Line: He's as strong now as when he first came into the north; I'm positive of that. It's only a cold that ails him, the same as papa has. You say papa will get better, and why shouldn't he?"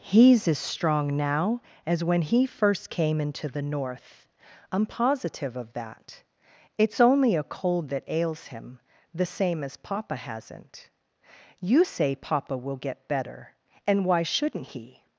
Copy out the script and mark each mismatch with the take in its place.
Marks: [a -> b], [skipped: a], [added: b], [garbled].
He's as strong now as when he first came into the north; I'm positive of that. It's only a cold that ails him, the same as papa [has. -> hasn't] You say papa will get better, and why shouldn't he?"